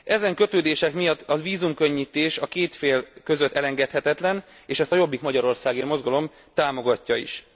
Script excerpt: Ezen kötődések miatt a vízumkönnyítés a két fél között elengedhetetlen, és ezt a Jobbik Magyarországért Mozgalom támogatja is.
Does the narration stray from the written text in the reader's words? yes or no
no